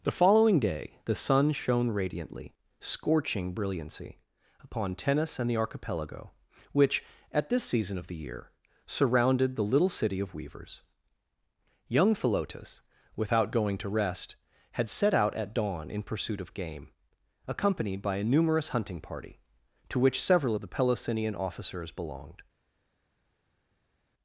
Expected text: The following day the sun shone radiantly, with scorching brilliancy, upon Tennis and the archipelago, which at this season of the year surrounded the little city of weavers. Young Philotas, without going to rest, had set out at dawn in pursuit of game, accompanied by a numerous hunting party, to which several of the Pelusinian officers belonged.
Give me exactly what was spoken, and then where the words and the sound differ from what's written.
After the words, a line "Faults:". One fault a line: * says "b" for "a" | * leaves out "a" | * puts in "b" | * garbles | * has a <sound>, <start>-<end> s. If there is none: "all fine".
The following day the sun shone radiantly, scorching brilliancy, upon Tennis and the archipelago, which at this season of the year surrounded the little city of weavers. Young Philotas, without going to rest, had set out at dawn in pursuit of game, accompanied by a numerous hunting party, to which several of the Pelusinian officers belonged.
Faults:
* leaves out "with"